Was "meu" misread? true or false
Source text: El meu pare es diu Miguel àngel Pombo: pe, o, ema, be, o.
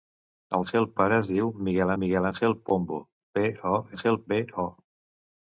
true